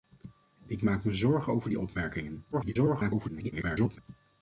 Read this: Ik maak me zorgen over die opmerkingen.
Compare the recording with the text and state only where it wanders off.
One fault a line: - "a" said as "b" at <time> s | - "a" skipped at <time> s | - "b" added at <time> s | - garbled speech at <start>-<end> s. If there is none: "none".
- garbled speech at 2.5-4.0 s